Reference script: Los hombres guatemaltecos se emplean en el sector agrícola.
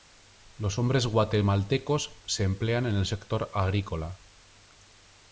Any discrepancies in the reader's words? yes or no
no